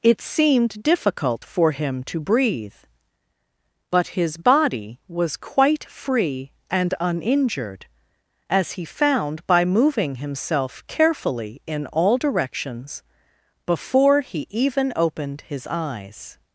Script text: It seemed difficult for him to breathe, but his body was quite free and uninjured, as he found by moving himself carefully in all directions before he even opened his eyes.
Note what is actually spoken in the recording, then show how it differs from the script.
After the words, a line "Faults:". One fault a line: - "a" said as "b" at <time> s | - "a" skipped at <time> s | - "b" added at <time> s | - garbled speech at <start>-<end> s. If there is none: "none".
It seemed difficult for him to breathe, but his body was quite free and uninjured, as he found by moving himself carefully in all directions before he even opened his eyes.
Faults:
none